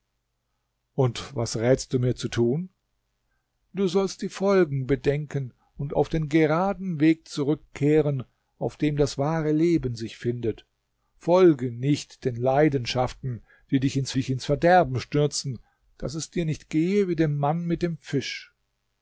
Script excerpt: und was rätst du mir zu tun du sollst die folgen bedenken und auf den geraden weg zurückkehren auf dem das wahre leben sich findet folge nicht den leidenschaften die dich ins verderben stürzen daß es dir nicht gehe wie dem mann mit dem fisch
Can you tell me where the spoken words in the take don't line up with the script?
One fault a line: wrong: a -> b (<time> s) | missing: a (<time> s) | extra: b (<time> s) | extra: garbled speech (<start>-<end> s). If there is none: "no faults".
extra: dich ins (14.1 s)